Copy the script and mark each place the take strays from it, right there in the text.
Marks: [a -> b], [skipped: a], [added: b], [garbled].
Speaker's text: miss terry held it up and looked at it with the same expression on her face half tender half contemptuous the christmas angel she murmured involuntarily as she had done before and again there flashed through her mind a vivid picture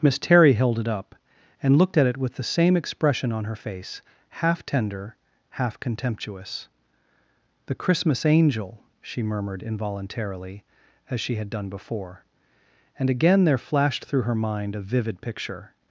miss terry held it up and looked at it with the same expression on her face half tender half contemptuous the christmas angel she murmured involuntarily as she had done before and again there flashed through her mind a vivid picture